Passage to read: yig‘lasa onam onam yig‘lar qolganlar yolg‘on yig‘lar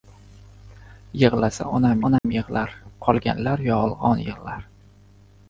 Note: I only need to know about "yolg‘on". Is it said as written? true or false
true